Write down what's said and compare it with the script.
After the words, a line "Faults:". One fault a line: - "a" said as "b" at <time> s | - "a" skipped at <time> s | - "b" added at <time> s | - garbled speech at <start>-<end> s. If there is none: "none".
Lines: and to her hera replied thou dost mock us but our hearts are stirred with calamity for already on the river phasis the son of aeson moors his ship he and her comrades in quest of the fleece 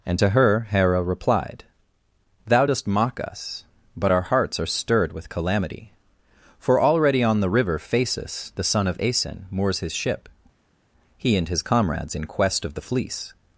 and to her hera replied thou dost mock us but our hearts are stirred with calamity for already on the river phasis the son of aeson moors his ship he and his comrades in quest of the fleece
Faults:
- "her" said as "his" at 11.5 s